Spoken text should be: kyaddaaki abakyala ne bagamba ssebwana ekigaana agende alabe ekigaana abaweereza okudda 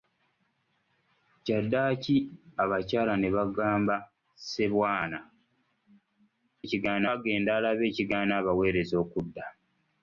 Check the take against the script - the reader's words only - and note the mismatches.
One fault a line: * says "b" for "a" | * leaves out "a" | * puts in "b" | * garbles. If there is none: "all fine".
all fine